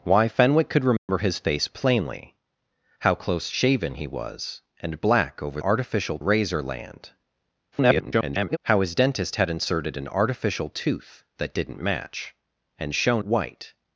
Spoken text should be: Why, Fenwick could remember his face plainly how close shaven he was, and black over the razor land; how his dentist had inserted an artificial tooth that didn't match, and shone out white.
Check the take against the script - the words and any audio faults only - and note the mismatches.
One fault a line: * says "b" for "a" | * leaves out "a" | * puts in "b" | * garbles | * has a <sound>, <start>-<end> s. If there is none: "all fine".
* has a dropout, 1.0-1.1 s
* says "artificial" for "the"
* garbles
* leaves out "out"